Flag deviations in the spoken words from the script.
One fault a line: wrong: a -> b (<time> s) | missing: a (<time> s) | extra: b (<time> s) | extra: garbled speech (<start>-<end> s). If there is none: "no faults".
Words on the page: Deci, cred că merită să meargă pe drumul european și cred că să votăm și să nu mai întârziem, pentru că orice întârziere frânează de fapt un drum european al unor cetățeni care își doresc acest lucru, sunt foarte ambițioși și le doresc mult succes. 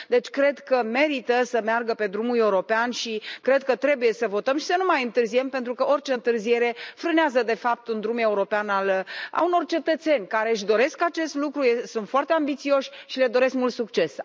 extra: trebuie (3.8 s)